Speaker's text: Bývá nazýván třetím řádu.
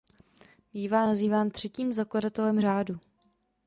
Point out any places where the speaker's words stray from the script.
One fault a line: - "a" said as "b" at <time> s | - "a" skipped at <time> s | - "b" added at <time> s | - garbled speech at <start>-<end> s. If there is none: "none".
- "zakladatelem" added at 1.9 s